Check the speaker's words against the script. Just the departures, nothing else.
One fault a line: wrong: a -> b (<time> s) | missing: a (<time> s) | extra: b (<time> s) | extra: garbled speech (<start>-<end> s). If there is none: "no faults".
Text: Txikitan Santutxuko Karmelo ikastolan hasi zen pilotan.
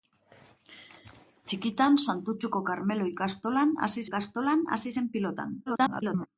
extra: ikastolan hasi (4.1 s)
extra: garbled speech (5.7-6.3 s)